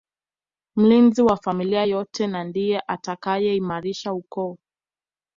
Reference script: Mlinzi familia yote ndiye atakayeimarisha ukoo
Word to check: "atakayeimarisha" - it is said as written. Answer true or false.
true